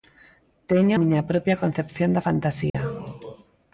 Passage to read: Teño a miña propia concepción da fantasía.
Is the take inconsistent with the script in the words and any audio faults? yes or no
yes